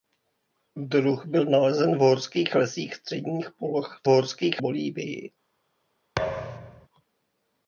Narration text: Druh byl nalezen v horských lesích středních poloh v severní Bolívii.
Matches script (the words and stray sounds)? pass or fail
fail